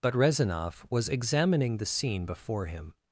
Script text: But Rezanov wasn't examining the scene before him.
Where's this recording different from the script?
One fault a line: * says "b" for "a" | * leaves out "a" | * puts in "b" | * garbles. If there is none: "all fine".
* says "was" for "wasn't"